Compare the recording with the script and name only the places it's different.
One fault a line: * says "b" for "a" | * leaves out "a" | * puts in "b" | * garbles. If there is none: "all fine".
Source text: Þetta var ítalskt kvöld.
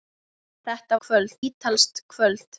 * says "kvöld" for "var"